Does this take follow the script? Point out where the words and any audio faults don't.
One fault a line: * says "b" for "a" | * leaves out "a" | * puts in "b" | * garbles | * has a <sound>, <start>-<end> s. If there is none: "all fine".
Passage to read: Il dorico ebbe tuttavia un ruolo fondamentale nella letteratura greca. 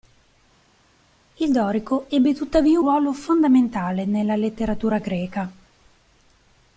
* leaves out "un"